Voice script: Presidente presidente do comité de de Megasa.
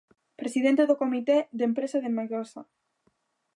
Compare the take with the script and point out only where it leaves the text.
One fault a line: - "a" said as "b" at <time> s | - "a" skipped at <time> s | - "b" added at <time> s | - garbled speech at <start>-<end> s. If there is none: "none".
- "presidente" skipped at 0.8 s
- "empresa" added at 1.7 s